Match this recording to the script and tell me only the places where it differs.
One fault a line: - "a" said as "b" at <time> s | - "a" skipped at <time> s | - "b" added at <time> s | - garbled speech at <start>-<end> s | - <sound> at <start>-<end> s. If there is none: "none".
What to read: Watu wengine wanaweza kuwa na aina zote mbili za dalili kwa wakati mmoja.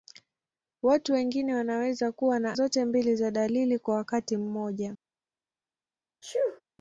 - "aina" skipped at 2.6 s
- sneeze at 6.2-6.6 s